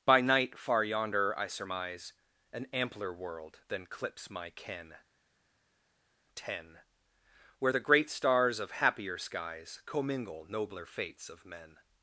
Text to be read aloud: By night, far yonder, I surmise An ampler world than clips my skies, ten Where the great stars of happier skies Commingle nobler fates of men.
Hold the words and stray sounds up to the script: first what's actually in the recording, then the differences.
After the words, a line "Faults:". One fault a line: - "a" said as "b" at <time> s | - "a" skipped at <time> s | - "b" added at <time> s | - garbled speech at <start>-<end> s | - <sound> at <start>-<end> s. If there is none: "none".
By night, far yonder, I surmise An ampler world than clips my ken, ten Where the great stars of happier skies Commingle nobler fates of men.
Faults:
- "skies" said as "ken" at 4.5 s